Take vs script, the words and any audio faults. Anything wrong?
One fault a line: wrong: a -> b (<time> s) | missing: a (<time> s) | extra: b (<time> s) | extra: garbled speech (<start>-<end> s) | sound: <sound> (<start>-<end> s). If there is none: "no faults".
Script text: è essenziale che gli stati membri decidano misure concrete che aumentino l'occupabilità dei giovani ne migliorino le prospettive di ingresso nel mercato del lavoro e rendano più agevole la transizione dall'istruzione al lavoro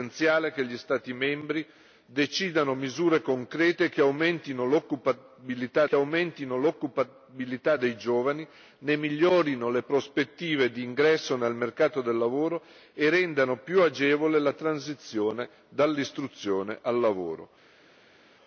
extra: che aumentino l'occupabilità (5.8 s)